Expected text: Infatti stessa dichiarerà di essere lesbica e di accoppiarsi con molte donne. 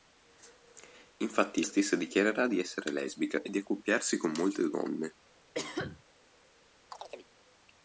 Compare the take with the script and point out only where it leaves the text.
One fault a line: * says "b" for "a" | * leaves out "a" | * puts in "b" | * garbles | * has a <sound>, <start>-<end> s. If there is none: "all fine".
* has a cough, 5.5-6.0 s
* has a chirp, 6.9-7.3 s